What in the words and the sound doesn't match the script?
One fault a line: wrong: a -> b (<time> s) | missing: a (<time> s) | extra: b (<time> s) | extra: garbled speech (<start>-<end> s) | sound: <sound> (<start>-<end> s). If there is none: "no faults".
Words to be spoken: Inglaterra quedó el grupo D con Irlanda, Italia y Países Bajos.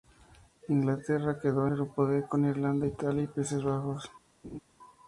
sound: laugh (4.4-4.6 s)